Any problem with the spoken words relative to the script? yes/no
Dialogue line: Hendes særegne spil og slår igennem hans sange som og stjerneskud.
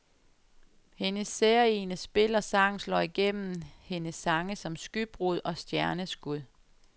yes